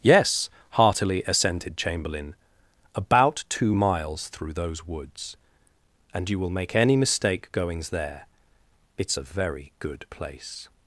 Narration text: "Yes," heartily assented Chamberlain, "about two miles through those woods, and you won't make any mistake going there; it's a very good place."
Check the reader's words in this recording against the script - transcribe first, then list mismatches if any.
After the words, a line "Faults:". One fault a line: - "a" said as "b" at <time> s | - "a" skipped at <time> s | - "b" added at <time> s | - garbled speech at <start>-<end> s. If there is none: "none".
"Yes," heartily assented Chamberlain, "about two miles through those woods, and you will make any mistake goings there; it's a very good place."
Faults:
- "won't" said as "will" at 6.4 s
- "going" said as "goings" at 7.5 s